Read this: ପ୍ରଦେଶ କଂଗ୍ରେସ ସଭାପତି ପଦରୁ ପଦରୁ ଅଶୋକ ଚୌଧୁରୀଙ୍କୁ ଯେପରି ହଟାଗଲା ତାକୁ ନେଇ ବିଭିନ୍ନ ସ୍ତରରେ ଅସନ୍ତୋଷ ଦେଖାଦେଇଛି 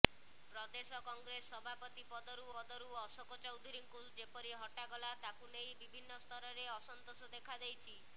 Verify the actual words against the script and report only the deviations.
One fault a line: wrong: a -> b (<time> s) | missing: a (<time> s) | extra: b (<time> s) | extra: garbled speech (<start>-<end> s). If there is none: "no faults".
no faults